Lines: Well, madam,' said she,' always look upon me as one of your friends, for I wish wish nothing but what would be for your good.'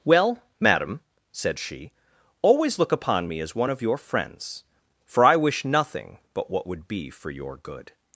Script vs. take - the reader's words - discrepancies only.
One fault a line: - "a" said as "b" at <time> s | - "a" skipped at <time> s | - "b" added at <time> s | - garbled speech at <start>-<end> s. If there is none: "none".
- "wish" skipped at 5.6 s